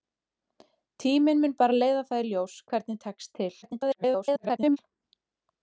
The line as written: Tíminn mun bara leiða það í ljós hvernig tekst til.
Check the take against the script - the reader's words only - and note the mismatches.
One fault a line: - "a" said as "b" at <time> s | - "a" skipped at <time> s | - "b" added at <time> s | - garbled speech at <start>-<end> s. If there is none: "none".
- garbled speech at 3.6-4.8 s